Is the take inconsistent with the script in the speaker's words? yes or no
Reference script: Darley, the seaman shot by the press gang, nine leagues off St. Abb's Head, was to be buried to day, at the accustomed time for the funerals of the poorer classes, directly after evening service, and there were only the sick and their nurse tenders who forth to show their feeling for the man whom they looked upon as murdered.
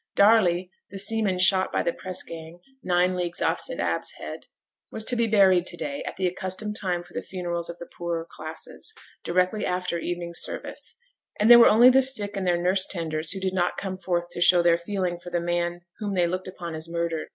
yes